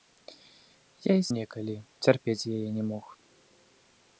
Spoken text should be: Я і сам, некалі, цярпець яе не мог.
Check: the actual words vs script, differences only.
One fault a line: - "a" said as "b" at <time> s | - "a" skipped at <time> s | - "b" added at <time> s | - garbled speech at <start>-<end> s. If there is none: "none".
- "сам" skipped at 1.2 s